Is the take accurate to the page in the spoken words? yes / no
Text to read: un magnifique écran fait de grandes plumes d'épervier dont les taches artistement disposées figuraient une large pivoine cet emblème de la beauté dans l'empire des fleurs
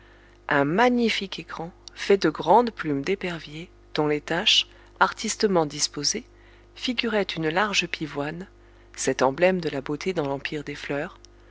yes